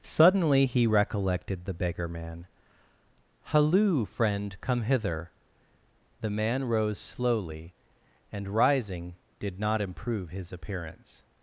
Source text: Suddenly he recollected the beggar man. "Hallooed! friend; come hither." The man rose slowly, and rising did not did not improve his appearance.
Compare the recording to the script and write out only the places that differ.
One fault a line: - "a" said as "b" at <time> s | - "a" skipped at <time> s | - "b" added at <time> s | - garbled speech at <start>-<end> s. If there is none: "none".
- "Hallooed" said as "Halloo" at 3.4 s
- "did not" skipped at 9.8 s